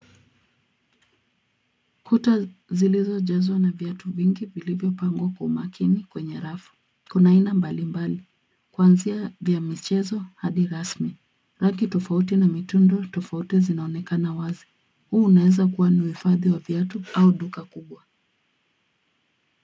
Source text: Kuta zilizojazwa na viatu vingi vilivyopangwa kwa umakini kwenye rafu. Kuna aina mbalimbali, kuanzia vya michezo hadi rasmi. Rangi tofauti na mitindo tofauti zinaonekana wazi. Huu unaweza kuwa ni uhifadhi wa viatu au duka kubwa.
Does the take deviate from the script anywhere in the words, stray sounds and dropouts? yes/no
no